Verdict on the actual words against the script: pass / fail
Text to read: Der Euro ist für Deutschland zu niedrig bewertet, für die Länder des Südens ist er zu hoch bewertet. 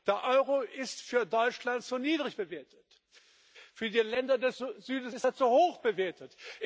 pass